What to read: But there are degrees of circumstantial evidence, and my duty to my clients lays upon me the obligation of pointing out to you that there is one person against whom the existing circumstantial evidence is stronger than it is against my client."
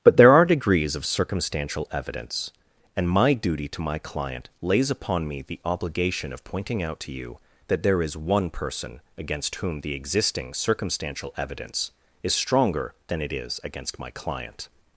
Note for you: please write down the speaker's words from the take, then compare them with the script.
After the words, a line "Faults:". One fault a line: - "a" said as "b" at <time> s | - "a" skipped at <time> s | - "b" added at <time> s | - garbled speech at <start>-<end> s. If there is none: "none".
But there are degrees of circumstantial evidence, and my duty to my client lays upon me the obligation of pointing out to you that there is one person against whom the existing circumstantial evidence is stronger than it is against my client."
Faults:
- "clients" said as "client" at 4.0 s